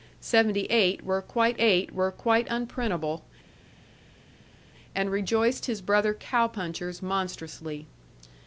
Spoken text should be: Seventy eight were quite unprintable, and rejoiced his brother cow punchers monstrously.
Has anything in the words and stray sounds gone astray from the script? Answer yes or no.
yes